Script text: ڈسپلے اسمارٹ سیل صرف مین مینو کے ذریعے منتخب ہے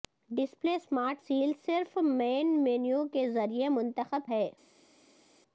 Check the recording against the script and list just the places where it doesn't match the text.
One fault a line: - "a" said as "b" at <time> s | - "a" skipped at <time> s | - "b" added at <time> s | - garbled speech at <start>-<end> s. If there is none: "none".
none